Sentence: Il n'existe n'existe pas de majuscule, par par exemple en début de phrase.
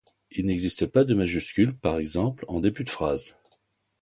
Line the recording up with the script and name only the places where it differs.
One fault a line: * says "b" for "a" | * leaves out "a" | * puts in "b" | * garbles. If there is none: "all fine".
* leaves out "n'existe"
* leaves out "par"